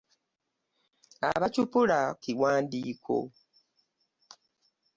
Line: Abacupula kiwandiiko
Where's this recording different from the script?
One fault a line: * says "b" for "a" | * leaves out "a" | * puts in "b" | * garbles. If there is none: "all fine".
all fine